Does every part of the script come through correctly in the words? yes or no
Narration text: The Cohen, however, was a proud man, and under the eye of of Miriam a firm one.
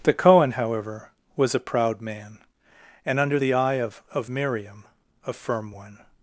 yes